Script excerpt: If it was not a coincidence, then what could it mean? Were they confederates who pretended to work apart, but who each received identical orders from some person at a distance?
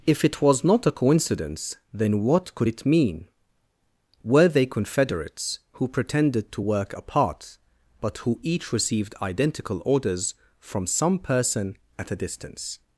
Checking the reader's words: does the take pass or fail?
pass